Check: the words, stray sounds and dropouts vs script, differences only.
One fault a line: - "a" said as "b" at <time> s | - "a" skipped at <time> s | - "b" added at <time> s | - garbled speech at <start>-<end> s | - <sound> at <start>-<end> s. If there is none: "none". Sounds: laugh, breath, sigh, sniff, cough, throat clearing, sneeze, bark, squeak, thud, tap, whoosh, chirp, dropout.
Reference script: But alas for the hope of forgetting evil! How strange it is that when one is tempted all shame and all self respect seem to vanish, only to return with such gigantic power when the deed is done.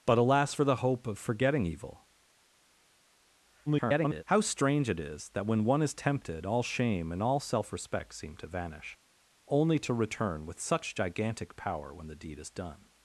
- garbled speech at 3.7-4.2 s